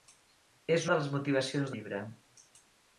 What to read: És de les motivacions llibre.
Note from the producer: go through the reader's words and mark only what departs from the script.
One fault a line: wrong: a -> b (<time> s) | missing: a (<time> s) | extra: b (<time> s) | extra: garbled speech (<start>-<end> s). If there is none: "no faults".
no faults